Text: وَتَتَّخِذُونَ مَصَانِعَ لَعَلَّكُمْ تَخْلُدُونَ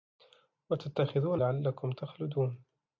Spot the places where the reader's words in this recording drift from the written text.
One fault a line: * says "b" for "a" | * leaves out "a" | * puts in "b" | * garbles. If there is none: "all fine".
* leaves out "مَصَانِعَ"